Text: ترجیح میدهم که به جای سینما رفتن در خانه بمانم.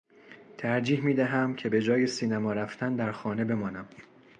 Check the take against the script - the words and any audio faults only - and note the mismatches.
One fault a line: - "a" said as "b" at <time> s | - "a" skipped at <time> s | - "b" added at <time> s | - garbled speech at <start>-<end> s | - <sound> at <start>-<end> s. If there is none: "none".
none